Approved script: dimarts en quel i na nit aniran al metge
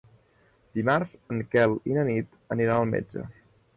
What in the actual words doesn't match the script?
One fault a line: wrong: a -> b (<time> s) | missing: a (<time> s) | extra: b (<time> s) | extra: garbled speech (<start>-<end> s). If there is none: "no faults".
no faults